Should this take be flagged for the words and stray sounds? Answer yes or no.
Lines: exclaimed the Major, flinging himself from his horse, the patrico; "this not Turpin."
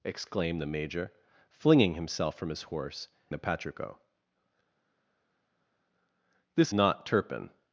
no